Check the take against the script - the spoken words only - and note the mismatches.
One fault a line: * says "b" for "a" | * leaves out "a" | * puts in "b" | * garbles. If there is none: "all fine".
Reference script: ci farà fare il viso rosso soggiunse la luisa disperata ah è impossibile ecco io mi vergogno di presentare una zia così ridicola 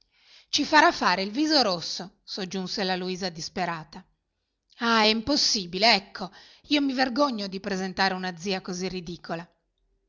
all fine